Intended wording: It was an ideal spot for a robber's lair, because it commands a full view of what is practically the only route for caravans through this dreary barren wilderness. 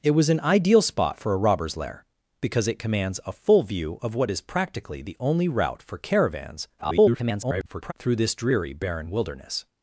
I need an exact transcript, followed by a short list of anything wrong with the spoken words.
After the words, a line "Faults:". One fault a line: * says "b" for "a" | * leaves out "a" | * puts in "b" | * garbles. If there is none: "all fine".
It was an ideal spot for a robber's lair, because it commands a full view of what is practically the only route for caravans [garbled] through this dreary barren wilderness.
Faults:
* garbles